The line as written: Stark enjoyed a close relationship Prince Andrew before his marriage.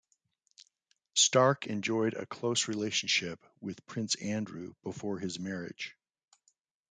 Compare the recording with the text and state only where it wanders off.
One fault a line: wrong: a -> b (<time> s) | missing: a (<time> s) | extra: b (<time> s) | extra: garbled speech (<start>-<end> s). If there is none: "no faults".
extra: with (3.6 s)